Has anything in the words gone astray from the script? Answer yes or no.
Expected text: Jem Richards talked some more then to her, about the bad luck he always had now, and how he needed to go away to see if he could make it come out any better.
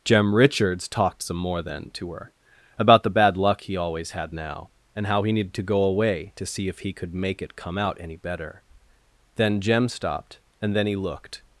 yes